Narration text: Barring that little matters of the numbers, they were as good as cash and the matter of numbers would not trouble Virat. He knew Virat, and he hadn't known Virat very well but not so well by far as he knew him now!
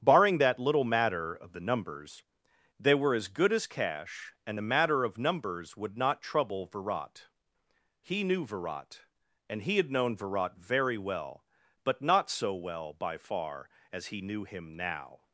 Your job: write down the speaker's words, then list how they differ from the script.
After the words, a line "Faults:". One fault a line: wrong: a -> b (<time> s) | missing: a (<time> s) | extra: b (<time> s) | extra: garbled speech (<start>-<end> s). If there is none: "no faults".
Barring that little matter of the numbers, they were as good as cash and the matter of numbers would not trouble Virat. He knew Virat, and he had known Virat very well but not so well by far as he knew him now!
Faults:
wrong: matters -> matter (0.8 s)
wrong: hadn't -> had (9.8 s)